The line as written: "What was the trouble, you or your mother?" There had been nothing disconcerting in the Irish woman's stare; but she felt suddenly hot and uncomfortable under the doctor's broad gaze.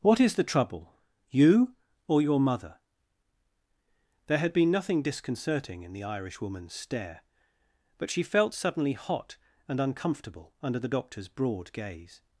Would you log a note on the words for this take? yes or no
yes